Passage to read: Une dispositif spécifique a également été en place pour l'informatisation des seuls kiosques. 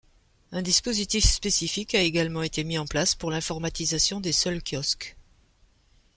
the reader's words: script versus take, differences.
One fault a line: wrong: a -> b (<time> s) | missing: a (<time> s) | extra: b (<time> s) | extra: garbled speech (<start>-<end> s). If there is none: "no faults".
wrong: Une -> Un (0.5 s)
extra: mis (2.6 s)